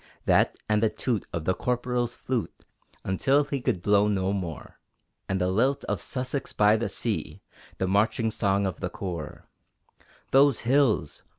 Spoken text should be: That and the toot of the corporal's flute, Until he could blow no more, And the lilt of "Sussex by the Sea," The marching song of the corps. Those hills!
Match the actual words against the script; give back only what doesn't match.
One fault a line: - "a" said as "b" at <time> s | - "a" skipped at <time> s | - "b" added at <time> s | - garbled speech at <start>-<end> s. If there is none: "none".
none